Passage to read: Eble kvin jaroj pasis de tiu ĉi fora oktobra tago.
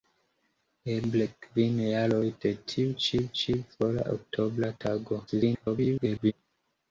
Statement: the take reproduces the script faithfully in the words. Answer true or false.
false